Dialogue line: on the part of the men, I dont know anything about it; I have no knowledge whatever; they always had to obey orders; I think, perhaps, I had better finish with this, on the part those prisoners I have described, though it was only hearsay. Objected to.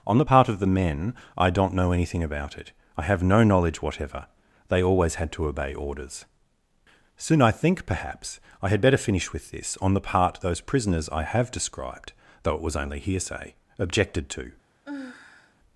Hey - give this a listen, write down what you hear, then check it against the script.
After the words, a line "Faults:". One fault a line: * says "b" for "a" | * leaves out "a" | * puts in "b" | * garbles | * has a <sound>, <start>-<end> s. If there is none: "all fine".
on the part of the men, I dont know anything about it; I have no knowledge whatever; they always had to obey orders; soon I think, perhaps, I had better finish with this, on the part those prisoners I have described, though it was only hearsay. Objected to.
Faults:
* puts in "soon"
* has a sigh, 14.9-15.6 s